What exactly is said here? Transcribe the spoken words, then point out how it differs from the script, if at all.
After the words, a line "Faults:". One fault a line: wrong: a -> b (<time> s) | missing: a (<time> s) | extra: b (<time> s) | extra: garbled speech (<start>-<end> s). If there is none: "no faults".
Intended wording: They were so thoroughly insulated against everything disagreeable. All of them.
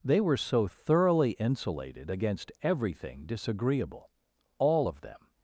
They were so thoroughly insulated against everything disagreeable. All of them.
Faults:
no faults